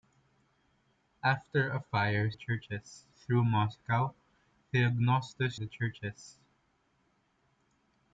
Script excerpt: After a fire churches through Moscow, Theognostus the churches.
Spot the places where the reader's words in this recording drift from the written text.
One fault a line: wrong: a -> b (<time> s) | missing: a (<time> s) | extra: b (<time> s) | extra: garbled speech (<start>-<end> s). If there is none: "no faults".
no faults